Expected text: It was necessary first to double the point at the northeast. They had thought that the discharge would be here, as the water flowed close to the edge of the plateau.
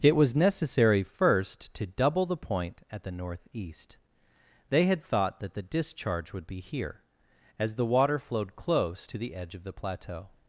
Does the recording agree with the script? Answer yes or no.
yes